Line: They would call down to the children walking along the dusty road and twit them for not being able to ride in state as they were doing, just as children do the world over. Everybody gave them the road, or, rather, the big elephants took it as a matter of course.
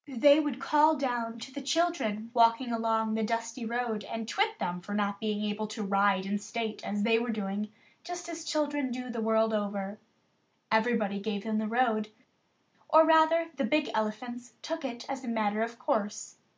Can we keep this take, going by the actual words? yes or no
yes